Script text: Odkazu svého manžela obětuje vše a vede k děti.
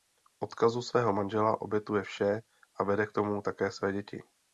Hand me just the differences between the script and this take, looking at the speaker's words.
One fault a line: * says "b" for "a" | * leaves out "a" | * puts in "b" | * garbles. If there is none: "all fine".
* puts in "tomu také své"